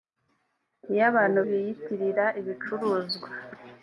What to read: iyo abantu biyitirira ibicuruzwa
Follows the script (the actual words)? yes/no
yes